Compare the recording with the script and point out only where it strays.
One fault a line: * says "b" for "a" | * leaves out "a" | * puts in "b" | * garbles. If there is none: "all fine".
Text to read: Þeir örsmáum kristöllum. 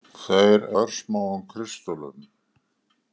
all fine